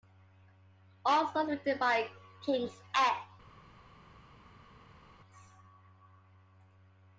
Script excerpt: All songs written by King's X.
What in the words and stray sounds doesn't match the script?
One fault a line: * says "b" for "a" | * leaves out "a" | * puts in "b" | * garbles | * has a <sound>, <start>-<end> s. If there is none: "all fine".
all fine